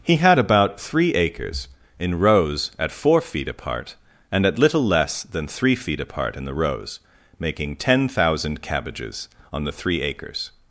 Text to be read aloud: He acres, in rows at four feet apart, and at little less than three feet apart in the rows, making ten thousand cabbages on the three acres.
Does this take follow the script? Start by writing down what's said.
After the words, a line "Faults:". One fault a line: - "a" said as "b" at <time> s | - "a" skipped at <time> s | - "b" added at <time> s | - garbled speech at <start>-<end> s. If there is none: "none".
He had about three acres, in rows at four feet apart, and at little less than three feet apart in the rows, making ten thousand cabbages on the three acres.
Faults:
- "had about three" added at 0.1 s